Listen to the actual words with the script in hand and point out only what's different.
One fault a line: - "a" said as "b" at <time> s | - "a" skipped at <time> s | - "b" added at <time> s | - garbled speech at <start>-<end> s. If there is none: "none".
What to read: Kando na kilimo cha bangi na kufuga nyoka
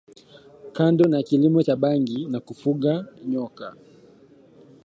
none